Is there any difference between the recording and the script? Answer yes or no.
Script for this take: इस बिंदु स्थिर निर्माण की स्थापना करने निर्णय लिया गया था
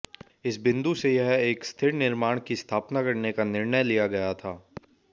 yes